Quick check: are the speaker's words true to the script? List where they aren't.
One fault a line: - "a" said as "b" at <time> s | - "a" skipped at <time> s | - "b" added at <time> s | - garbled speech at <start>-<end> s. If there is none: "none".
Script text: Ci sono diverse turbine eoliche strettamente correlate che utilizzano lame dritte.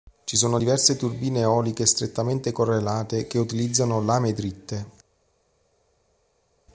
none